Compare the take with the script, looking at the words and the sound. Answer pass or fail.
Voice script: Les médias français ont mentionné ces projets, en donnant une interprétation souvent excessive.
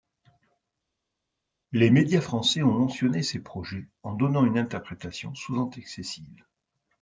pass